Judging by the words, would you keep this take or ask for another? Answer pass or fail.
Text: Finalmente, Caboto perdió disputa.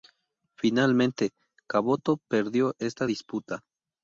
fail